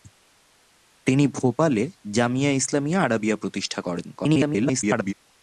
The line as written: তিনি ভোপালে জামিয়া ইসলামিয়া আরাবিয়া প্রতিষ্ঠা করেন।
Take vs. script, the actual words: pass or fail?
fail